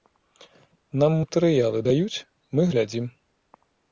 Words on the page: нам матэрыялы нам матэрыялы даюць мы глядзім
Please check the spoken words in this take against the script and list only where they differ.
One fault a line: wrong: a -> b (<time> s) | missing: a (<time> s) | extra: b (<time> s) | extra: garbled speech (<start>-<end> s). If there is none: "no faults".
missing: нам матэрыялы (1.8 s)